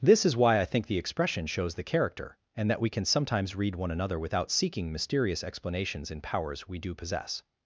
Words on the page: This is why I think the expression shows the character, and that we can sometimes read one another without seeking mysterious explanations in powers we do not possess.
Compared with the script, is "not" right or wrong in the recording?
wrong